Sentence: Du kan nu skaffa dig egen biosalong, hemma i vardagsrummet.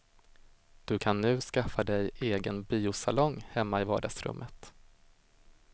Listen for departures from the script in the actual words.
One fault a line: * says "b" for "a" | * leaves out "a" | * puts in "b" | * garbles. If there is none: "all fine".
all fine